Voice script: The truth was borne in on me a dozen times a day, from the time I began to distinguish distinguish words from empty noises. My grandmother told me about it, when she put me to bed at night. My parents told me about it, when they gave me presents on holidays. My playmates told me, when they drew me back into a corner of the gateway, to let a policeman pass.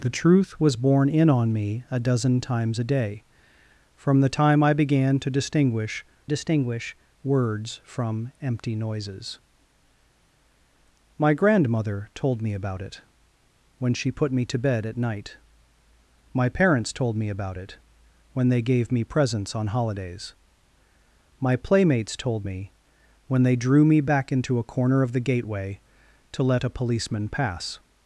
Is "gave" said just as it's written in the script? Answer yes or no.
yes